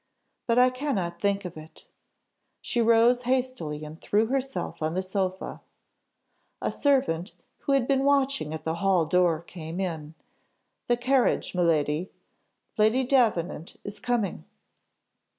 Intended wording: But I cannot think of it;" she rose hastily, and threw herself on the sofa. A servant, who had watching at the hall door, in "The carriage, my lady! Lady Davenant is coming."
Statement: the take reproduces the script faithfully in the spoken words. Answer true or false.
false